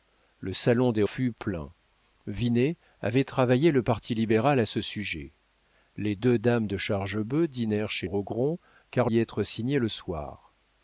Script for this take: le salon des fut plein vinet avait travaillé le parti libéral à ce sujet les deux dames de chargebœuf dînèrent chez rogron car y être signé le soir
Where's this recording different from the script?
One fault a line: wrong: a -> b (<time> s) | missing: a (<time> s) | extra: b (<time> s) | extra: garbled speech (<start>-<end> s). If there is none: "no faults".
no faults